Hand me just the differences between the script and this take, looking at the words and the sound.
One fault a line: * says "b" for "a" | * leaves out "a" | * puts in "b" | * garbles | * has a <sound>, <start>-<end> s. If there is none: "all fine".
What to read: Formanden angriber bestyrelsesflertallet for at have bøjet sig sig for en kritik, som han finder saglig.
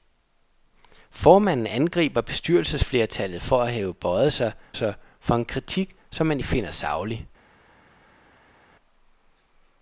all fine